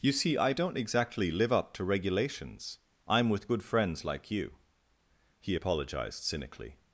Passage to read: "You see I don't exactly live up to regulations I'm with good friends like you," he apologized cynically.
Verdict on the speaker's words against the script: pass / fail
pass